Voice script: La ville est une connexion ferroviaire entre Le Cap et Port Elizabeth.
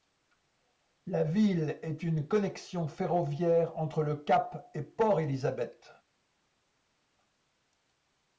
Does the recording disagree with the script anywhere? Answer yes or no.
no